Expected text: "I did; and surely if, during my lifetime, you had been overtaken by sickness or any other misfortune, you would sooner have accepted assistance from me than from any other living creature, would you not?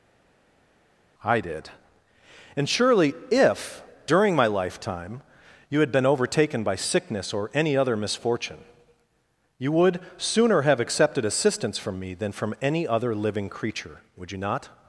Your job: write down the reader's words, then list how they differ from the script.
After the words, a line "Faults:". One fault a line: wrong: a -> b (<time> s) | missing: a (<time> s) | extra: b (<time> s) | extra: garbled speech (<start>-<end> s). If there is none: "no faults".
"I did; and surely if, during my lifetime, you had been overtaken by sickness or any other misfortune, you would sooner have accepted assistance from me than from any other living creature, would you not?
Faults:
no faults